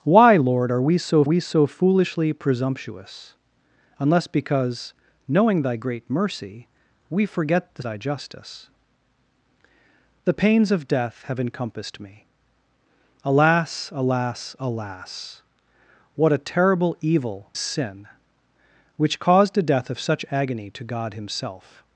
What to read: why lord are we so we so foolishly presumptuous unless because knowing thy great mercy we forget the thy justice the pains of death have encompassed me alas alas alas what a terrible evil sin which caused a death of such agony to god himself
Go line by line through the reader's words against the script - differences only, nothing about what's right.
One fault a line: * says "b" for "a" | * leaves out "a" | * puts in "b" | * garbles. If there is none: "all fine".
all fine